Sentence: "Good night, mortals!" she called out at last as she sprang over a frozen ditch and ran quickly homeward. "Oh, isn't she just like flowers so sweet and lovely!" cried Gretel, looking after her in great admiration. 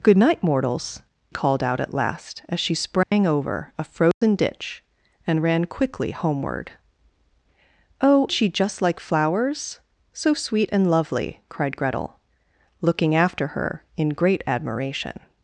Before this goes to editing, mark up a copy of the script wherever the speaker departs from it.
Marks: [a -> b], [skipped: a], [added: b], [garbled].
"Good night, mortals!" [skipped: she] called out at last as she sprang over a frozen ditch and ran quickly homeward. "Oh, [skipped: isn't] she just like flowers so sweet and lovely!" cried Gretel, looking after her in great admiration.